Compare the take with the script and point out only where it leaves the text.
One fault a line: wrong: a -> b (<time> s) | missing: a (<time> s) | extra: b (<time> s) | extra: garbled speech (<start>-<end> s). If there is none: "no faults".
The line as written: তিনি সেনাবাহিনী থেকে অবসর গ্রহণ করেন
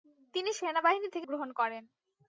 missing: অবসর (1.3 s)